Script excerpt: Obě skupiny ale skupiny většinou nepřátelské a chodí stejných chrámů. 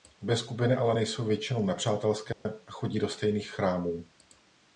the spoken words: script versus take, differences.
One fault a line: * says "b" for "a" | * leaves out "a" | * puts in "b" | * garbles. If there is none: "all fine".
* says "nejsou" for "skupiny"
* puts in "do"